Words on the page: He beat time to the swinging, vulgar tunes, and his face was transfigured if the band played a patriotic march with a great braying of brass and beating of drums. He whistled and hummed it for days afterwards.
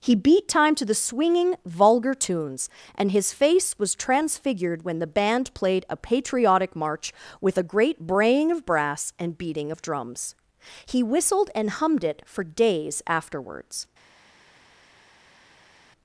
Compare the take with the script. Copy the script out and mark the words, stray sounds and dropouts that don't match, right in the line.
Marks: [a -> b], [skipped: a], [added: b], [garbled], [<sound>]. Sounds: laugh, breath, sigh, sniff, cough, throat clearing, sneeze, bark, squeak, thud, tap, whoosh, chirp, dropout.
He beat time to the swinging, vulgar tunes, and his face was transfigured [if -> when] the band played a patriotic march with a great braying of brass and beating of drums. He whistled and hummed it for days afterwards.